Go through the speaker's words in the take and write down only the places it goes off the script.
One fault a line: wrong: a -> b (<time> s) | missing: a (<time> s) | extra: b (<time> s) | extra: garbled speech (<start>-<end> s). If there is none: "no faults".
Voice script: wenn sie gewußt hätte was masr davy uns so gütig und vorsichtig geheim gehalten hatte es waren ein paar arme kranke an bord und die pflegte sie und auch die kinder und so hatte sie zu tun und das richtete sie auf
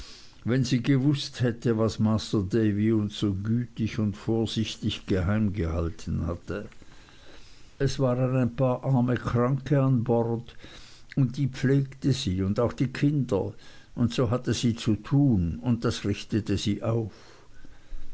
no faults